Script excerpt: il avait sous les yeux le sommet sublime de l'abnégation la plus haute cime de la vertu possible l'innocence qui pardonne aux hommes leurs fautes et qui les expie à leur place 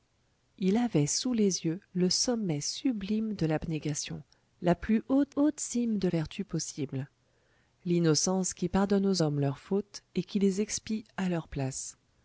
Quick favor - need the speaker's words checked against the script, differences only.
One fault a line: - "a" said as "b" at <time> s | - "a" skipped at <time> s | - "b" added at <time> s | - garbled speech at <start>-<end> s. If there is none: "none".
- "haute" added at 5.4 s
- "la" skipped at 6.1 s